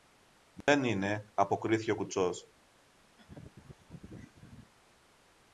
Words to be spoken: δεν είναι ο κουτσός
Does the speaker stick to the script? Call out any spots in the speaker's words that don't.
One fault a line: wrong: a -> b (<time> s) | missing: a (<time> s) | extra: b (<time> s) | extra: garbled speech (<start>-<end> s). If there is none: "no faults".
extra: αποκρίθηκε (1.3 s)